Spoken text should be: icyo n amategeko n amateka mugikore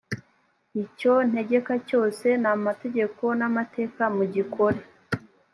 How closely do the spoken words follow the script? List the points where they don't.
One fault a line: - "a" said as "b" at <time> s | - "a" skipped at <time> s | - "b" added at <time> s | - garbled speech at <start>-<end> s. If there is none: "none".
- "ntegeka cyose" added at 1.3 s